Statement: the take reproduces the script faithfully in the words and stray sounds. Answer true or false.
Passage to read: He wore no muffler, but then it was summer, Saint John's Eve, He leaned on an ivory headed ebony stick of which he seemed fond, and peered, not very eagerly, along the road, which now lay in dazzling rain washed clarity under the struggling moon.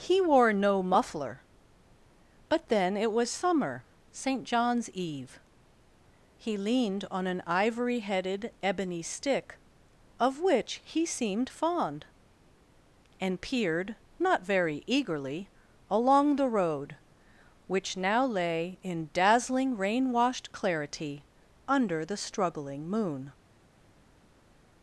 true